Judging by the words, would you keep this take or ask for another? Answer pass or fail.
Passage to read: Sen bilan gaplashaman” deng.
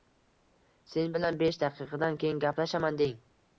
fail